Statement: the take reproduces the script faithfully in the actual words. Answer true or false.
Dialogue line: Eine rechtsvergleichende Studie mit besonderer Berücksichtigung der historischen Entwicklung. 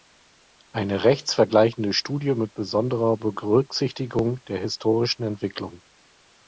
true